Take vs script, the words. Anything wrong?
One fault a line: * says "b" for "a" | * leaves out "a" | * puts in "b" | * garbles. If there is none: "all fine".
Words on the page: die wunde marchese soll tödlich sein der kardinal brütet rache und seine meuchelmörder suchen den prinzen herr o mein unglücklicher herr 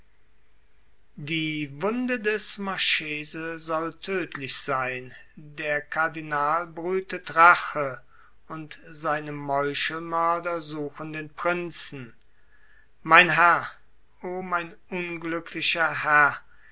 * puts in "des"
* puts in "mein"